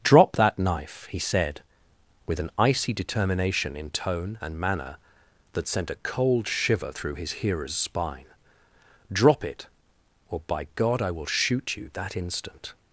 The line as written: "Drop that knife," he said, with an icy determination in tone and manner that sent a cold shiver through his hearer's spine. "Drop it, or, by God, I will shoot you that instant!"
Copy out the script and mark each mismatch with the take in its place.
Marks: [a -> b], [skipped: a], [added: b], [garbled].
"Drop that knife," he said, with an icy determination in tone and manner that sent a cold shiver through his hearer's spine. "Drop it, or, by God, I will shoot you that instant!"